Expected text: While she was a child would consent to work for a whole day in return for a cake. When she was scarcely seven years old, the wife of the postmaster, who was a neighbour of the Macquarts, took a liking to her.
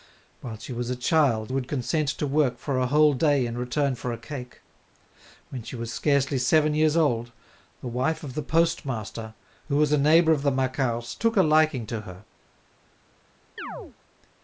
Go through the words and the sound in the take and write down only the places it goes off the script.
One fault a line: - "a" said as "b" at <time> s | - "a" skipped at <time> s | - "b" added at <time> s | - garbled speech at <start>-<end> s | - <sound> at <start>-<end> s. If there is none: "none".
- chirp at 13.6-14.0 s